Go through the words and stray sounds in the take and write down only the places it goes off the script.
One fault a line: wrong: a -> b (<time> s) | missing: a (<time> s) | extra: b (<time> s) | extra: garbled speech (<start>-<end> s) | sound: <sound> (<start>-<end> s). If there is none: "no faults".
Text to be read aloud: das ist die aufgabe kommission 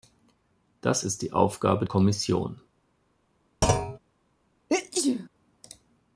sound: thud (3.6-4.0 s)
sound: sneeze (4.7-5.3 s)